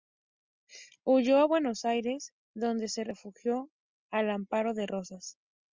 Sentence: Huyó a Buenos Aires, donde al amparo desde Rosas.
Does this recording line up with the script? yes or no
no